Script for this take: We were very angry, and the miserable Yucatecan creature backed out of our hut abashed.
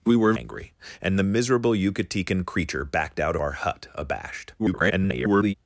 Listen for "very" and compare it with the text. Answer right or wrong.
wrong